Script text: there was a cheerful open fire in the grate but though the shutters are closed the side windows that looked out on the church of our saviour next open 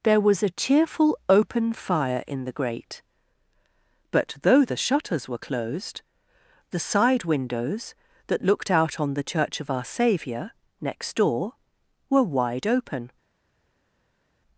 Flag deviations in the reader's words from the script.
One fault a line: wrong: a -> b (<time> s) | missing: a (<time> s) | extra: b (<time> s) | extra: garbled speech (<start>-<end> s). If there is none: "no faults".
wrong: are -> were (5.3 s)
extra: door were wide (11.2 s)